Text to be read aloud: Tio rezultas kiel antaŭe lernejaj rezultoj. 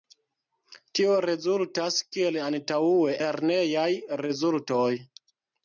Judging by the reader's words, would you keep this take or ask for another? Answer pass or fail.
pass